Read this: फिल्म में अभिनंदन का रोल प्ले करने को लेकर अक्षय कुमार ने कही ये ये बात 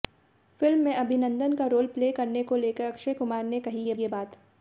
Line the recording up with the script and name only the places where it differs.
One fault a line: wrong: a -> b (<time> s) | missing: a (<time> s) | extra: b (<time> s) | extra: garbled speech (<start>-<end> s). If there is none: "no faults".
no faults